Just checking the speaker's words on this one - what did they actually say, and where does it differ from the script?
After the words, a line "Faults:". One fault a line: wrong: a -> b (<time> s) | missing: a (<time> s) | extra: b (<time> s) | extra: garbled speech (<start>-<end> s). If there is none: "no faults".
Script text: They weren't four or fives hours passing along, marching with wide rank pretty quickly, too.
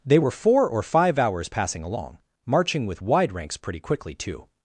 They were four or five hours passing along, marching with wide ranks pretty quickly, too.
Faults:
wrong: weren't -> were (0.2 s)
wrong: fives -> five (0.8 s)
wrong: rank -> ranks (3.3 s)